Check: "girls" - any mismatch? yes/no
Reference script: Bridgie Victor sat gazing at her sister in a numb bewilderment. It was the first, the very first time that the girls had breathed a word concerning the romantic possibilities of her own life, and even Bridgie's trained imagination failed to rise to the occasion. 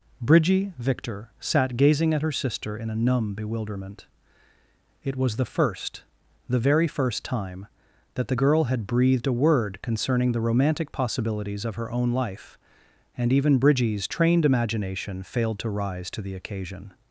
yes